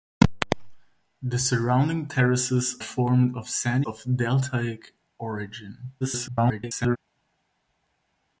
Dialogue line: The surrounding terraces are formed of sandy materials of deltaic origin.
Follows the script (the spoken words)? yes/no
no